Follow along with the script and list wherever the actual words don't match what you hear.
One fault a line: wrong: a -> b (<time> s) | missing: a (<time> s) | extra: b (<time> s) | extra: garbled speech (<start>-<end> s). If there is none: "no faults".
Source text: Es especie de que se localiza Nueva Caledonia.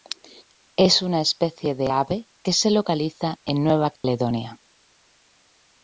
extra: una (1.0 s)
extra: ave (1.9 s)
extra: en (3.4 s)